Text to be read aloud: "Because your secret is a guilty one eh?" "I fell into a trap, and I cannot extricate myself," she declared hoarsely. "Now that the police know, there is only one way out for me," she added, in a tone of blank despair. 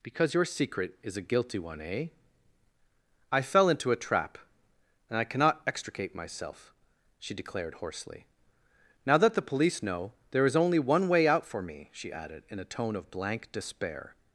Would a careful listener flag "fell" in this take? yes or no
no